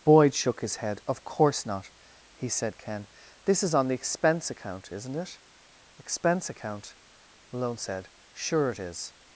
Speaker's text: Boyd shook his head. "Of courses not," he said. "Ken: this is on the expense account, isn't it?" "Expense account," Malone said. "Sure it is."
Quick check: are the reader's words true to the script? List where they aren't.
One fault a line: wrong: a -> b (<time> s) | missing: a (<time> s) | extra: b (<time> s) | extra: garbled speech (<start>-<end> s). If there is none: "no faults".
wrong: courses -> course (1.2 s)